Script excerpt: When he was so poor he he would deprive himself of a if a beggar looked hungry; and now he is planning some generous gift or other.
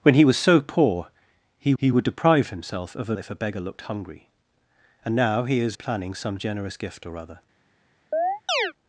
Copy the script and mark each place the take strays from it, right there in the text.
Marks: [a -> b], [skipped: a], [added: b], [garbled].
When he was so poor he he would deprive himself of a if a beggar looked hungry; and now he is planning some generous gift or other.